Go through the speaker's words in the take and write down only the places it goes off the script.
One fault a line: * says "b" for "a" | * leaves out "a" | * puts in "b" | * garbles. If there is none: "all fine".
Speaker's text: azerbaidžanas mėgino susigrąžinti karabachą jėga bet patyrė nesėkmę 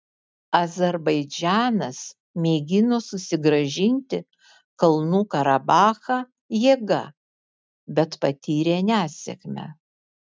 * puts in "kalnų"